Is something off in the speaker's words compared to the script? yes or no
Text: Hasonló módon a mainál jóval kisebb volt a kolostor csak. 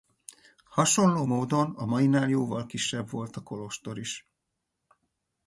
yes